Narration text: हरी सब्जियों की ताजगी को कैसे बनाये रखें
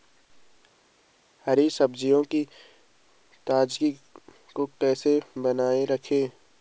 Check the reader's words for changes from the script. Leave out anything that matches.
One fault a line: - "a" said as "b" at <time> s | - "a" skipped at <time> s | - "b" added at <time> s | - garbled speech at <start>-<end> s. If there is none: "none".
none